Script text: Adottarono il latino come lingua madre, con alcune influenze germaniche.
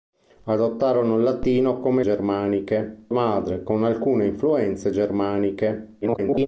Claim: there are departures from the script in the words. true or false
true